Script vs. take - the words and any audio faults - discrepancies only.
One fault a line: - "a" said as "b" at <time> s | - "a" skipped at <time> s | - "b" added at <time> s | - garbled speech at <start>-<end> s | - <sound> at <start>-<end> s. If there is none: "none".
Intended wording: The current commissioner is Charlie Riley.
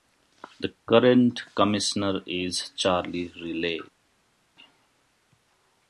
none